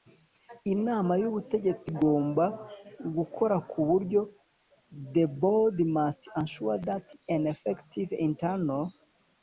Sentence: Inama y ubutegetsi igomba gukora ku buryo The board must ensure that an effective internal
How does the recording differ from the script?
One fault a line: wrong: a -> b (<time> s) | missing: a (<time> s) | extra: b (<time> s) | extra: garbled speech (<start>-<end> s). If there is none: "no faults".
no faults